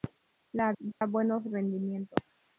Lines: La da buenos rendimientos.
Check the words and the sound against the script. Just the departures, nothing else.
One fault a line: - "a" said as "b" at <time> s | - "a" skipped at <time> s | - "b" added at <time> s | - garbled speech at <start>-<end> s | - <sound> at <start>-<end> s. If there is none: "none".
- dropout at 0.9-1.0 s